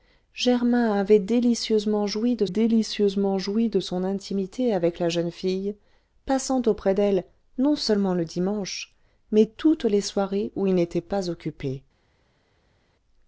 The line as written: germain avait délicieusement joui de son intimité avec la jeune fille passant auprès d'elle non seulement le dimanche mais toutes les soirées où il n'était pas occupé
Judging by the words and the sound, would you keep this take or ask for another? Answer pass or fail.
fail